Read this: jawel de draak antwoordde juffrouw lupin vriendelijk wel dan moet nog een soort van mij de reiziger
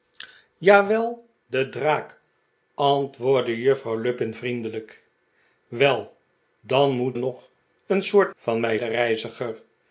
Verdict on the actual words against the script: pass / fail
pass